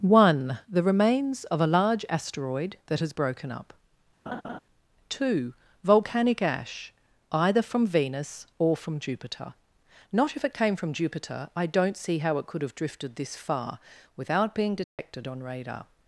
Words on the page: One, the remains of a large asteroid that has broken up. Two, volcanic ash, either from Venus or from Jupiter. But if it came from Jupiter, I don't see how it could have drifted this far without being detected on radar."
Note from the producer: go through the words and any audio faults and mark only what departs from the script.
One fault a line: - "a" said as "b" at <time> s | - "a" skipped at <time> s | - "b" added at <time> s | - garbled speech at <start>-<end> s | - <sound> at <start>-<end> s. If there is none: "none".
- laugh at 4.3-4.6 s
- "But" said as "Not" at 10.1 s
- dropout at 14.8-15.0 s